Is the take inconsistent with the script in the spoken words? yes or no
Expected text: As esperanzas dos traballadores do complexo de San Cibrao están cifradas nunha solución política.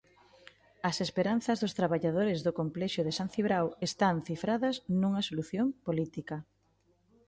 no